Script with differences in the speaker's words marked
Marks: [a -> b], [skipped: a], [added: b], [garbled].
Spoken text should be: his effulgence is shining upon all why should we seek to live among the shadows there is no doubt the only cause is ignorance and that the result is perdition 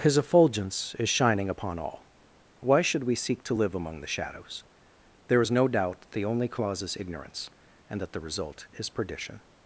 his effulgence is shining upon all why should we seek to live among the shadows there is no doubt the only cause is ignorance and that the result is perdition